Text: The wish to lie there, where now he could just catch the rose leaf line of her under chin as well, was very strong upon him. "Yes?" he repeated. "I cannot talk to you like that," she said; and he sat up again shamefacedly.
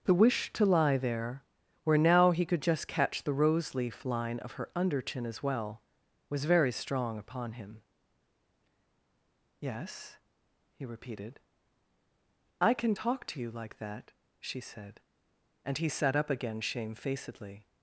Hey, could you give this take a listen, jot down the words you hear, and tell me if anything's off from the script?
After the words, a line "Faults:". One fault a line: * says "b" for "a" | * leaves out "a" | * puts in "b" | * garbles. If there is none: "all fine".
The wish to lie there, where now he could just catch the rose leaf line of her under chin as well, was very strong upon him. "Yes?" he repeated. "I can talk to you like that," she said; and he sat up again shamefacedly.
Faults:
* says "can" for "cannot"